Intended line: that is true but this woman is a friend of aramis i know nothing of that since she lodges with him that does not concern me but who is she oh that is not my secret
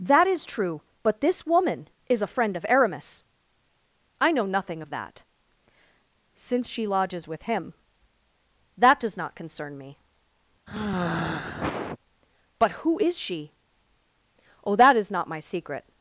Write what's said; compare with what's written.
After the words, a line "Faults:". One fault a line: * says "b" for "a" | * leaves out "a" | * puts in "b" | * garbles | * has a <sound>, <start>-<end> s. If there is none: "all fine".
that is true but this woman is a friend of aramis i know nothing of that since she lodges with him that does not concern me but who is she oh that is not my secret
Faults:
* has a sigh, 10.7-12.0 s